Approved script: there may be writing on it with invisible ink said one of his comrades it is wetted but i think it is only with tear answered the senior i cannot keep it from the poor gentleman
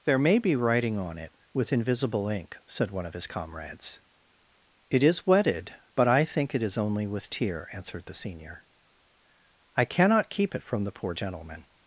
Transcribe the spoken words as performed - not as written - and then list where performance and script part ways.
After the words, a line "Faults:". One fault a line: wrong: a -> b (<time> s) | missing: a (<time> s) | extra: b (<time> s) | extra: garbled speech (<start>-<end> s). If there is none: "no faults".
there may be writing on it with invisible ink said one of his comrades it is wetted but i think it is only with tear answered the senior i cannot keep it from the poor gentleman
Faults:
no faults